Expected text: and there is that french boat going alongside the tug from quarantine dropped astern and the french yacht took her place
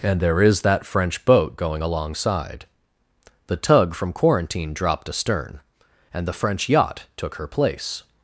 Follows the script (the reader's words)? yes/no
yes